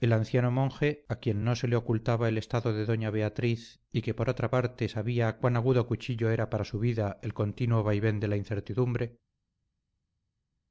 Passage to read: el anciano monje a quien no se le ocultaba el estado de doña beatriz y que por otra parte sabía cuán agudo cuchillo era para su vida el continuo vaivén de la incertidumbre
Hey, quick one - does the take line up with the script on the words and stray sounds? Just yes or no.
yes